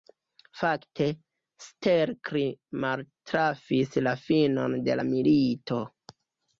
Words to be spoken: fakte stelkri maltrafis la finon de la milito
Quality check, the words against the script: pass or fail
pass